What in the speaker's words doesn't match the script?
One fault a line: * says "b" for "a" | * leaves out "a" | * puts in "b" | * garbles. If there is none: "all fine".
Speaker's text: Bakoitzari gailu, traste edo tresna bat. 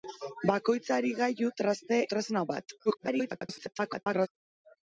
* leaves out "edo"
* garbles